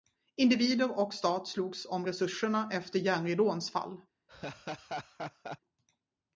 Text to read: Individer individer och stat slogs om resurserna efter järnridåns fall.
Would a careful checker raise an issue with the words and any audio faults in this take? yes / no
yes